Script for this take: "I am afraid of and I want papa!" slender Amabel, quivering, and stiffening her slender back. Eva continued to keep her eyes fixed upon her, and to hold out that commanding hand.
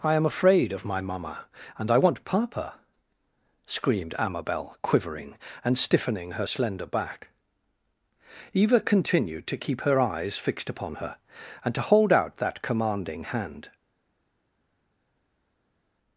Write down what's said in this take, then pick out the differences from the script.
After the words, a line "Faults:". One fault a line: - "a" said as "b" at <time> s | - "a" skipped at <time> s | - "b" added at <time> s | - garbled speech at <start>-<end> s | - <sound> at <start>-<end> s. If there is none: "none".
"I am afraid of my mamma, and I want papa!" screamed Amabel, quivering, and stiffening her slender back. Eva continued to keep her eyes fixed upon her, and to hold out that commanding hand.
Faults:
- "my mamma" added at 0.8 s
- "slender" said as "screamed" at 3.7 s